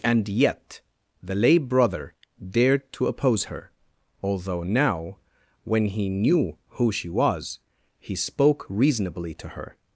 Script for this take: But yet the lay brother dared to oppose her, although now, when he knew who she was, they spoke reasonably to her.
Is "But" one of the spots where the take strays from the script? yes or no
yes